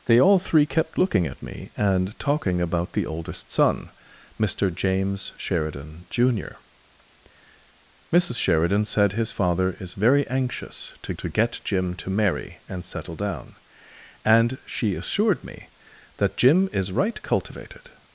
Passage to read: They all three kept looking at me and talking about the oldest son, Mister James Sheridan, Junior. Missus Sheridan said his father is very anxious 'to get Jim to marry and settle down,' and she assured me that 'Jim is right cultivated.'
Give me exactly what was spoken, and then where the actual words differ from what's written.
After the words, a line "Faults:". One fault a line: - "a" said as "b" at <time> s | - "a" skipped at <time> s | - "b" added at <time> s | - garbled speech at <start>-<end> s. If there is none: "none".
They all three kept looking at me and talking about the oldest son, Mister James Sheridan, Junior. Missus Sheridan said his father is very anxious 'to to get Jim to marry and settle down,' and she assured me that 'Jim is right cultivated.'
Faults:
- "to" added at 11.2 s